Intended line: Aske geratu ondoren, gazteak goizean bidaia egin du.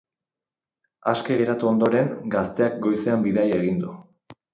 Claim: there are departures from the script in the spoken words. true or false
false